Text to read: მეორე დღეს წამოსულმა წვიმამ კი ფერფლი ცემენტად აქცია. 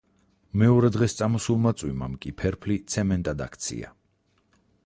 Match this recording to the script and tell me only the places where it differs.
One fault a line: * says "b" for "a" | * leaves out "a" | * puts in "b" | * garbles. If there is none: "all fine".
all fine